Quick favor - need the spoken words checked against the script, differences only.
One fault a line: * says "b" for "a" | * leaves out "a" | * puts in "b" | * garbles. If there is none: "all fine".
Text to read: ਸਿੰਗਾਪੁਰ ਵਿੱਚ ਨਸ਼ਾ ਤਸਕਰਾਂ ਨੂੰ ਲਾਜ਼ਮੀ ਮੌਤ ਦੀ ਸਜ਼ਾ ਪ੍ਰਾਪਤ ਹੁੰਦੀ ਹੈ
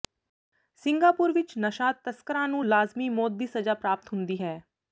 all fine